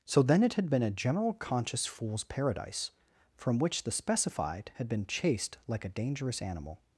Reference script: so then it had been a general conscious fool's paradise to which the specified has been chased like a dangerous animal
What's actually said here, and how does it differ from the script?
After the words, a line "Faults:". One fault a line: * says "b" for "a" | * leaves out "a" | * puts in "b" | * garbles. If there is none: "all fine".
so then it had been a general conscious fool's paradise from which the specified had been chased like a dangerous animal
Faults:
* says "from" for "to"
* says "had" for "has"